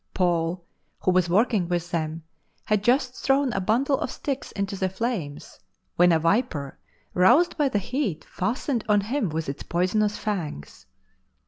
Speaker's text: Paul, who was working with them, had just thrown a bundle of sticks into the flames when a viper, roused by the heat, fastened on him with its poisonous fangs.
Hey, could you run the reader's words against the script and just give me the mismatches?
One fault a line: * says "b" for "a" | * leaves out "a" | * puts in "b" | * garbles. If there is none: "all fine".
all fine